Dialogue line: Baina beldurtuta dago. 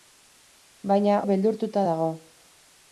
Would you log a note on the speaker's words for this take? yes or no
no